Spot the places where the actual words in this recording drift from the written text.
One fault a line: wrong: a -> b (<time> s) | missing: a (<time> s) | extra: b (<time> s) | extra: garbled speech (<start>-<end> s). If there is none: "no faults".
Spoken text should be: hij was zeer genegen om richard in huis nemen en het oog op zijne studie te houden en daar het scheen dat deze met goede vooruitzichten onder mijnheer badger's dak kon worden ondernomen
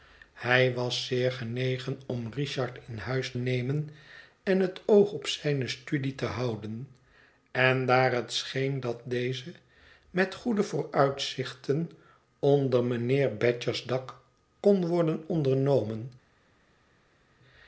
no faults